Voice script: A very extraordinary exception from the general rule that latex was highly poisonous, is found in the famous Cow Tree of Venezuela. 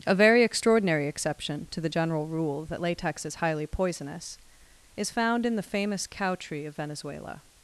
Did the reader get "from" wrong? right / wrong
wrong